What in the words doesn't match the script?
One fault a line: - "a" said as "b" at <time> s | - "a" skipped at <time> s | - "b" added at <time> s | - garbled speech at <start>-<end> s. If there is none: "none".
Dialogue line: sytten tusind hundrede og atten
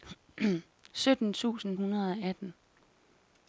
none